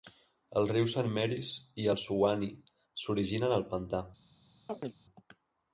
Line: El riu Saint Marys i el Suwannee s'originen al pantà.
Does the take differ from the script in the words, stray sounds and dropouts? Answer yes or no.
yes